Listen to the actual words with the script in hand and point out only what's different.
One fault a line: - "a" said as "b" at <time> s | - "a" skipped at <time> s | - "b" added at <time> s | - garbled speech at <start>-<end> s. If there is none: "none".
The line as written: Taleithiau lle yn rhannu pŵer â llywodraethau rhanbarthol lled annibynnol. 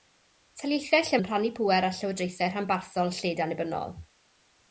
none